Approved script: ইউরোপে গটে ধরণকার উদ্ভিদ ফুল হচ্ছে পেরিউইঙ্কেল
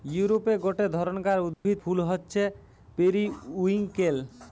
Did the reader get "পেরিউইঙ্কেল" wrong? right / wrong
right